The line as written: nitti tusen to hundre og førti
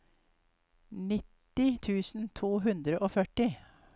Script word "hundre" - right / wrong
right